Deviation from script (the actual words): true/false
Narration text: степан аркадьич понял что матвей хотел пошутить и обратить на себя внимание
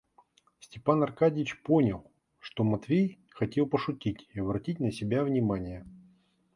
false